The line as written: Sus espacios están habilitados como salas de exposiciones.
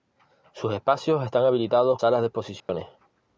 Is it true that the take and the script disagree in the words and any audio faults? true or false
true